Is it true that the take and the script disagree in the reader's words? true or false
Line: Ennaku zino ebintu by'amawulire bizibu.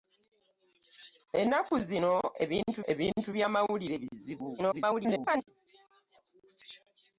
true